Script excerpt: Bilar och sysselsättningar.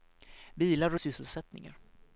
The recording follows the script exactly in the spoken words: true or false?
true